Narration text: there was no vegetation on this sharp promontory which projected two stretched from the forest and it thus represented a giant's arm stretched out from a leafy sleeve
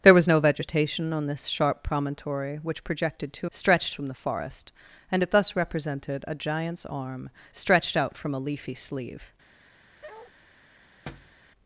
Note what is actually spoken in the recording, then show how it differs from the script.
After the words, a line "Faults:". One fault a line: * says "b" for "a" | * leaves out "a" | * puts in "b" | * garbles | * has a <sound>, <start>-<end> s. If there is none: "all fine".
there was no vegetation on this sharp promontory which projected two stretched from the forest and it thus represented a giant's arm stretched out from a leafy sleeve
Faults:
* has a bark, 10.0-10.3 s
* has a thud, 11.1-11.4 s